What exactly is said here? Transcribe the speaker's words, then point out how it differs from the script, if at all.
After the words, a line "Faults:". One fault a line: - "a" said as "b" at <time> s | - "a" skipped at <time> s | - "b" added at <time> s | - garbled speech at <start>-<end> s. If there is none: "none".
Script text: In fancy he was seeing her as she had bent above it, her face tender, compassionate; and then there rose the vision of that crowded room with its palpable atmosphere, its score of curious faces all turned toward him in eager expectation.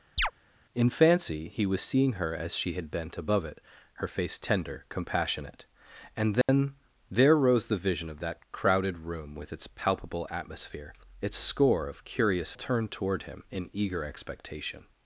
In fancy he was seeing her as she had bent above it, her face tender, compassionate; and then there rose the vision of that crowded room with its palpable atmosphere, its score of curious turned toward him in eager expectation.
Faults:
- "faces all" skipped at 12.5 s